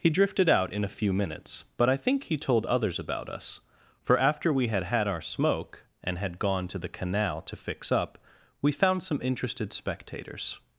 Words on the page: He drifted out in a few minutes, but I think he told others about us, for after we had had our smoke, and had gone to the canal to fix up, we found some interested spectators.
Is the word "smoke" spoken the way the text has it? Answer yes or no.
yes